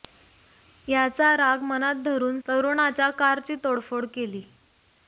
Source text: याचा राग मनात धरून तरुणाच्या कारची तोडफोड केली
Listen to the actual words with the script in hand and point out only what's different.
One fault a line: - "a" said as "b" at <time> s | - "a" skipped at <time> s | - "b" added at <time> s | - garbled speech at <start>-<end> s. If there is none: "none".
none